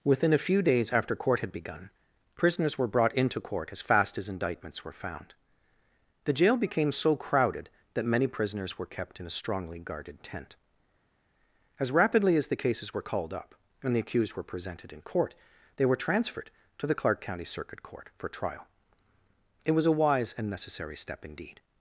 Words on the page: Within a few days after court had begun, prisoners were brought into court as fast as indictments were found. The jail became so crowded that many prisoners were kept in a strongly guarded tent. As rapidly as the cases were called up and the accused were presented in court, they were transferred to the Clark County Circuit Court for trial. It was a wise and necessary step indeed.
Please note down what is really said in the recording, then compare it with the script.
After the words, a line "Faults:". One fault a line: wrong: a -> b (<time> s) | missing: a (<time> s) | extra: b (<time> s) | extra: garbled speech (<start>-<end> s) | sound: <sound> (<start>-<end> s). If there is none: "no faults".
Within a few days after court had begun, prisoners were brought into court as fast as indictments were found. The jail became so crowded that many prisoners were kept in a strongly guarded tent. As rapidly as the cases were called up and the accused were presented in court, they were transferred to the Clark County Circuit Court for trial. It was a wise and necessary step indeed.
Faults:
no faults